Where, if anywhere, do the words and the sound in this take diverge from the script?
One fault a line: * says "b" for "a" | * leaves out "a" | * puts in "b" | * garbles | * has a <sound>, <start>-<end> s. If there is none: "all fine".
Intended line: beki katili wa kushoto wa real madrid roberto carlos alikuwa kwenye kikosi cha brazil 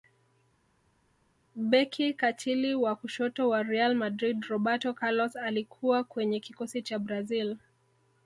all fine